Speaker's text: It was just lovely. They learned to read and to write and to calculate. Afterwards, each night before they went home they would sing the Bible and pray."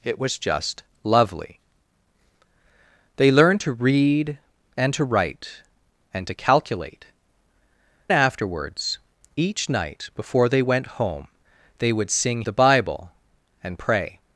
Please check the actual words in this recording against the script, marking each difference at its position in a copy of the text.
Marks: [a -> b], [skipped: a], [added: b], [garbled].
It was just lovely. They learned to read and to write and to calculate. Afterwards, each night before they went home they would sing the Bible and pray."